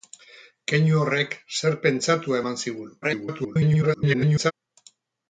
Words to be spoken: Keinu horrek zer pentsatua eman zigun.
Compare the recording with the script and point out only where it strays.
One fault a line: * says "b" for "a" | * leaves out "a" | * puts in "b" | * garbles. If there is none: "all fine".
* garbles